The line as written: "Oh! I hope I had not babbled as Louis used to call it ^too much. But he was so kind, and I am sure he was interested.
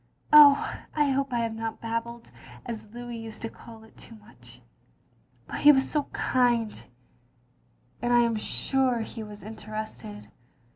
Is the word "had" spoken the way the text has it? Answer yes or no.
no